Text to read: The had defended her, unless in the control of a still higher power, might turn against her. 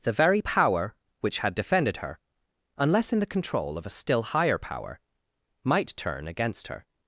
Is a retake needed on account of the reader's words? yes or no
yes